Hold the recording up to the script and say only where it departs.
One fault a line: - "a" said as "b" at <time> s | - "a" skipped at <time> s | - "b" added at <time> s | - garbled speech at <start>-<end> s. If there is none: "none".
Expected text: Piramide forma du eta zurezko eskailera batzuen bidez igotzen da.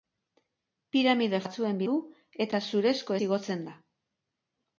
- "forma" said as "batzuen" at 1.4 s
- "eskailera batzuen bidez" skipped at 3.2 s